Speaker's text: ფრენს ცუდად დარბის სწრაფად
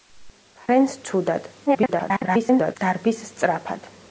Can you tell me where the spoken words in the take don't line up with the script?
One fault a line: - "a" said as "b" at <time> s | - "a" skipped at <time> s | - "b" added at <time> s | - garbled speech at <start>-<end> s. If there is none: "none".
- garbled speech at 1.7-2.8 s